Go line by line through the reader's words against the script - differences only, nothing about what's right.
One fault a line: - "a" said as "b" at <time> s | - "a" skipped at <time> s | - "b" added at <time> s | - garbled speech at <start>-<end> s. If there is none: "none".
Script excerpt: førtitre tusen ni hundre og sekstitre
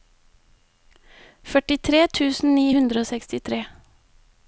none